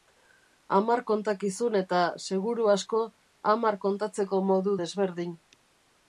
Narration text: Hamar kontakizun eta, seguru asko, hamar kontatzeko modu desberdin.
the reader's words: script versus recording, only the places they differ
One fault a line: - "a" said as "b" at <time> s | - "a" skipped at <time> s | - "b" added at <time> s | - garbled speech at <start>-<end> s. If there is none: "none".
none